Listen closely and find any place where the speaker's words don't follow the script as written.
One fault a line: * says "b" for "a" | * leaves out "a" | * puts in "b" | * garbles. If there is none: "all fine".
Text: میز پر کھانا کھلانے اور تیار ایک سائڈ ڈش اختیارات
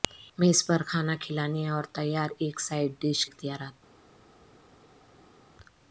all fine